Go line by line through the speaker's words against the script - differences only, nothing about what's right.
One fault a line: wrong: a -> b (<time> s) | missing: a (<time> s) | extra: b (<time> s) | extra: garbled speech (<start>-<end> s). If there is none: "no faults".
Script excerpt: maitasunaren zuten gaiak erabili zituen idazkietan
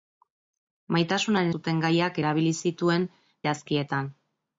no faults